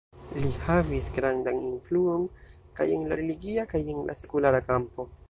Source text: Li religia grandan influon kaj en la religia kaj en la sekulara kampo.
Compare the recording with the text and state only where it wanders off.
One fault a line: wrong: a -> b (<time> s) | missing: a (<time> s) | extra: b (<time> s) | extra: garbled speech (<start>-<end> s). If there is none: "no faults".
wrong: religia -> havis (0.7 s)